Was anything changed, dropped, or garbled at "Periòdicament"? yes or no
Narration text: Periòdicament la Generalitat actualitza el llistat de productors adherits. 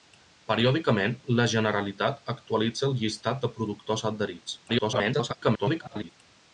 no